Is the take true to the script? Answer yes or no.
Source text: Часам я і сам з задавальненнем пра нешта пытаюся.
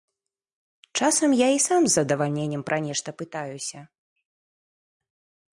yes